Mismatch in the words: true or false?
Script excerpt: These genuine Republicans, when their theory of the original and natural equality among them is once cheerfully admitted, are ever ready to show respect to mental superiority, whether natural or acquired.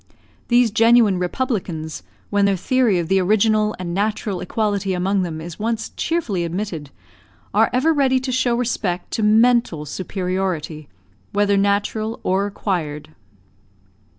false